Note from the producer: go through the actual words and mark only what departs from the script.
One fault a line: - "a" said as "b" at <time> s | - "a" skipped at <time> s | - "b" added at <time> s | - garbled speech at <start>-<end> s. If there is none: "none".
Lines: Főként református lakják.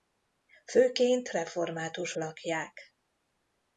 none